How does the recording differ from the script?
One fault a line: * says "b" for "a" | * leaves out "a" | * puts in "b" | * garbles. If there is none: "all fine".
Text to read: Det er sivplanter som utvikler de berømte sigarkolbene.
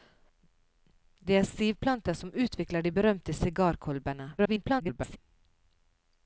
* garbles